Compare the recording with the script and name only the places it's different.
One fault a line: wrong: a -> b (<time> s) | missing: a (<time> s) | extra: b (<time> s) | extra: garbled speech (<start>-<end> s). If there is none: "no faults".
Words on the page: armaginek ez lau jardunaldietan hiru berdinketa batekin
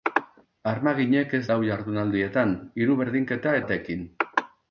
no faults